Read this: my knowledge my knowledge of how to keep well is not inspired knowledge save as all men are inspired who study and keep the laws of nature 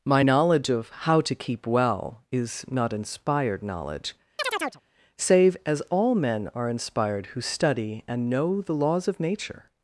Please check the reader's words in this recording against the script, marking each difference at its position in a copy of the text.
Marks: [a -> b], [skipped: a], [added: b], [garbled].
my knowledge [skipped: my knowledge] of how to keep well is not inspired knowledge save as all men are inspired who study and [keep -> know] the laws of nature